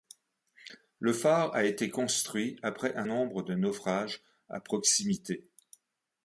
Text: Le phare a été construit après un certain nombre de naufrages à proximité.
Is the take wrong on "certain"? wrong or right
wrong